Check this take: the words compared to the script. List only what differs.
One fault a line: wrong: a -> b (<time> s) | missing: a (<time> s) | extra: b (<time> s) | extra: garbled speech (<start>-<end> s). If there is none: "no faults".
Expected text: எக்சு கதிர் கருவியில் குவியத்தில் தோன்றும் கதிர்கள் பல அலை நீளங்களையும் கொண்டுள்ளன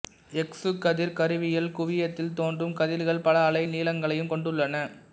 no faults